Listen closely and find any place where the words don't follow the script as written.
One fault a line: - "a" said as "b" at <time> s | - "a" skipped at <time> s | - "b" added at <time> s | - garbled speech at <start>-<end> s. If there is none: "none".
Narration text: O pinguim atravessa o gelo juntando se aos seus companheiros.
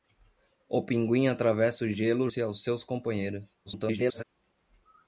- "juntando" skipped at 2.3 s
- garbled speech at 3.7-4.2 s